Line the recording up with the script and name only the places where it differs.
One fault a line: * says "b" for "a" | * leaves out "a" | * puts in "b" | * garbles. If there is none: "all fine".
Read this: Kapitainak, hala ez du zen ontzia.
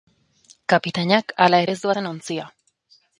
all fine